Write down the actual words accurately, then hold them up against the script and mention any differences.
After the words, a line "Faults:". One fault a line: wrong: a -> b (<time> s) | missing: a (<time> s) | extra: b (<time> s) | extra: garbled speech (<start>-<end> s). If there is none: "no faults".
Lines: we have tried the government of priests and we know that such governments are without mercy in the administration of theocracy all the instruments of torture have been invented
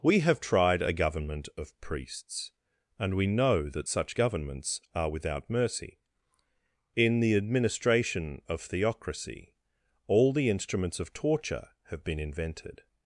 we have tried a government of priests and we know that such governments are without mercy in the administration of theocracy all the instruments of torture have been invented
Faults:
wrong: the -> a (0.8 s)